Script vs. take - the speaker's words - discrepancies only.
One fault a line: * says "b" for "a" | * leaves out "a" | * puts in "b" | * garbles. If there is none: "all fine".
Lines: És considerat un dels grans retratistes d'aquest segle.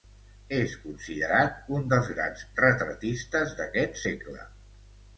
all fine